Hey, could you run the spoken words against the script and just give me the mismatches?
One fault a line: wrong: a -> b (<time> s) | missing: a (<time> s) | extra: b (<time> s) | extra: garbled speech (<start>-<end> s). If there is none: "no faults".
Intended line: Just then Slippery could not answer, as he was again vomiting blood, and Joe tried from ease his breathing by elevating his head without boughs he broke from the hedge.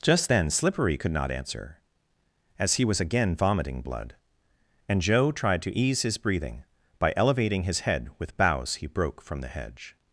wrong: from -> to (5.6 s)
wrong: without -> with (8.2 s)